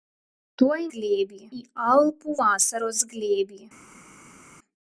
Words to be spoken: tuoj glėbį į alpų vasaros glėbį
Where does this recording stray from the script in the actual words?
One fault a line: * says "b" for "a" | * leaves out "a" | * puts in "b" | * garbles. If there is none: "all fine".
all fine